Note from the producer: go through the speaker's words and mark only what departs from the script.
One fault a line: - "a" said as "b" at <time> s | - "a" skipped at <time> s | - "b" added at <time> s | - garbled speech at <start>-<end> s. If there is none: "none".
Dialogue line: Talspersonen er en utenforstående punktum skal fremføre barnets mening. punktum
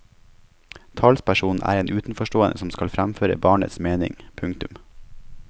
- "punktum" said as "som" at 2.6 s